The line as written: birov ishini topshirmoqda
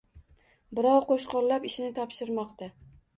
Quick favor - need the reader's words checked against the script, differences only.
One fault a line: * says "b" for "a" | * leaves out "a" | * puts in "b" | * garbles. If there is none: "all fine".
* puts in "qo‘shqo‘llab"